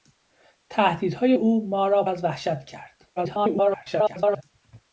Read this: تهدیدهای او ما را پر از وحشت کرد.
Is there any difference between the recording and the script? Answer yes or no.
yes